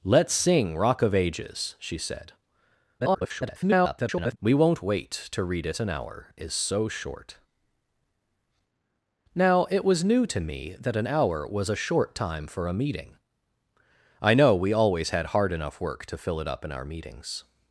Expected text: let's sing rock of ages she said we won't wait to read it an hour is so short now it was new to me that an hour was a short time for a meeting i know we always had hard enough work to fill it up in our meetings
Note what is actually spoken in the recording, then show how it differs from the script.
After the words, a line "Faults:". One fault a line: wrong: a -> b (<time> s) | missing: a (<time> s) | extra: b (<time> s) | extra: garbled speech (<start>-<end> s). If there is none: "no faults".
let's sing rock of ages she said [garbled] we won't wait to read it an hour is so short now it was new to me that an hour was a short time for a meeting i know we always had hard enough work to fill it up in our meetings
Faults:
extra: garbled speech (3.0-4.4 s)